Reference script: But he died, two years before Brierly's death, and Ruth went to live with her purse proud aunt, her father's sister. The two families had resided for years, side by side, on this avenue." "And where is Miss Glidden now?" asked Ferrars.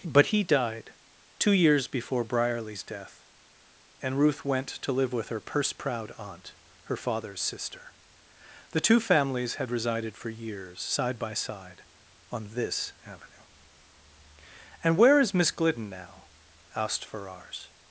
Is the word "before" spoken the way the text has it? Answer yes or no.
yes